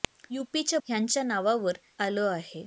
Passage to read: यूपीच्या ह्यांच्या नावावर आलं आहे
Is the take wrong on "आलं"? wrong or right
right